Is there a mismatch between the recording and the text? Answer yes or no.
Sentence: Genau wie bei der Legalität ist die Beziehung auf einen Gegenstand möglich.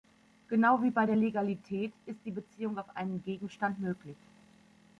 no